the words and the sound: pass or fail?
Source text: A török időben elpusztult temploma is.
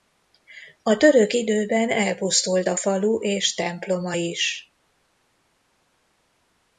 fail